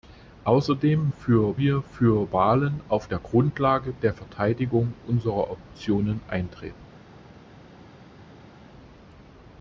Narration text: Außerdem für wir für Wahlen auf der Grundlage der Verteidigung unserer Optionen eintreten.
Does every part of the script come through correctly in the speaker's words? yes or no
yes